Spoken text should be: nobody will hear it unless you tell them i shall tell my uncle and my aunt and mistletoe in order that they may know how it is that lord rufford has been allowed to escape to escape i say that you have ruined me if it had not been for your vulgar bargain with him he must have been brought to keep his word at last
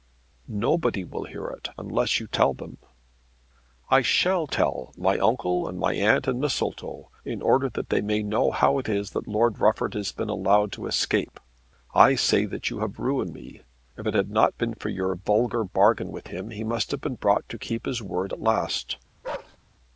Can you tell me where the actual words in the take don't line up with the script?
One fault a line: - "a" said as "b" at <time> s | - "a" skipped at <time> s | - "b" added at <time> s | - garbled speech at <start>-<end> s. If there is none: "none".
- "to escape" skipped at 11.4 s